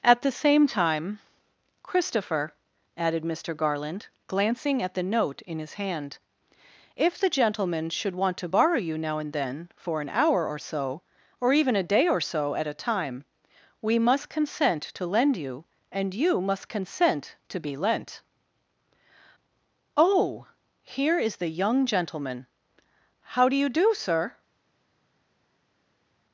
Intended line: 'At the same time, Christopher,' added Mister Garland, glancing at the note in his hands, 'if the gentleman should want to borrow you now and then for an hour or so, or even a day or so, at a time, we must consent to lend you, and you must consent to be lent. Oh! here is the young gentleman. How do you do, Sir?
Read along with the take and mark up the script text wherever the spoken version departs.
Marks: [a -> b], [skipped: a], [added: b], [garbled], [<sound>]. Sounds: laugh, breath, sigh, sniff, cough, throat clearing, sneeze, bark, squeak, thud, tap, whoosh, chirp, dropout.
'At the same time, Christopher,' added Mister Garland, glancing at the note in his [hands, -> hand] 'if the gentleman should want to borrow you now and then for an hour or so, or even a day or so, at a time, we must consent to lend you, and you must consent to be lent. Oh! here is the young gentleman. How do you do, Sir?